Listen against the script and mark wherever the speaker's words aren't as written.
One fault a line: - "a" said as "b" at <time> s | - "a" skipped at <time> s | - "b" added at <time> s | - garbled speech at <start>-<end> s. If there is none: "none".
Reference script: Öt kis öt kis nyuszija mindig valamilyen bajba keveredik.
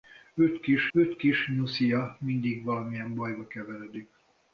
none